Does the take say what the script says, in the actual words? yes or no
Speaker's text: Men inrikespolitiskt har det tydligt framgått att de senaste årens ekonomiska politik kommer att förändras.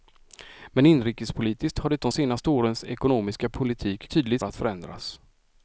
no